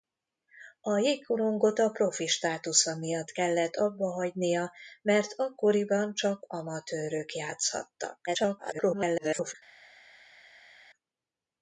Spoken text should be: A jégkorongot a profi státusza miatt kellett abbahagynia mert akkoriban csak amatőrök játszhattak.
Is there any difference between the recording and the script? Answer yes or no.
yes